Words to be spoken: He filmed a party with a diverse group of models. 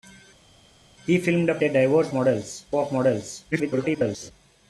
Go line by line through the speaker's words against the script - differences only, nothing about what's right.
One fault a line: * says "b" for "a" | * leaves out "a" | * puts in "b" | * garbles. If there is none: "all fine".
* leaves out "party with"
* says "models" for "group"
* garbles